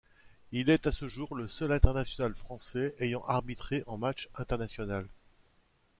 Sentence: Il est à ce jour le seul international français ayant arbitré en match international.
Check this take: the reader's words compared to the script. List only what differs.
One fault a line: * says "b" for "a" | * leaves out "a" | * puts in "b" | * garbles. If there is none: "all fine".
all fine